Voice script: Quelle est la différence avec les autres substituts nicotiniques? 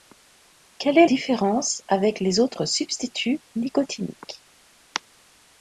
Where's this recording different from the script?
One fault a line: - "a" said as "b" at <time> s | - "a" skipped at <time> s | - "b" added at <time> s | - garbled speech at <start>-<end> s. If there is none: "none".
- "la" skipped at 1.1 s